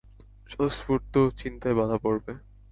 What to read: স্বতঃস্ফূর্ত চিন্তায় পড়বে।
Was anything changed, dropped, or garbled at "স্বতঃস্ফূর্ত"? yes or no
no